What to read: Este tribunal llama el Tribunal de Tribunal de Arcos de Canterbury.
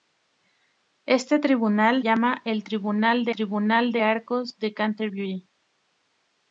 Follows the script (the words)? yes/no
yes